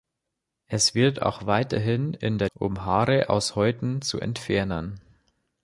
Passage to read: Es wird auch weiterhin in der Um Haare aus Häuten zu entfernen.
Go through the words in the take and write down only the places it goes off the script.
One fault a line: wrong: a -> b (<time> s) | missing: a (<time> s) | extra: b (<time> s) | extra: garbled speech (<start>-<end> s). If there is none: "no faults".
no faults